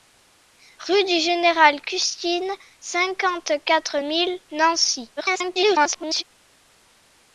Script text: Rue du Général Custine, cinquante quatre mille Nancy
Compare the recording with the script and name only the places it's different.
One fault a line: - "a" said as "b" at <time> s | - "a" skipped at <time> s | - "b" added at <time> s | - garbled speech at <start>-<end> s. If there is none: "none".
- garbled speech at 5.2-6.2 s